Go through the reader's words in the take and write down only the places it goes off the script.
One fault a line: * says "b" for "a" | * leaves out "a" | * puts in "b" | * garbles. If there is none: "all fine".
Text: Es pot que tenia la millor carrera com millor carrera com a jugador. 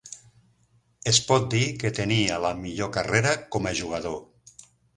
* puts in "dir"
* leaves out "millor carrera com"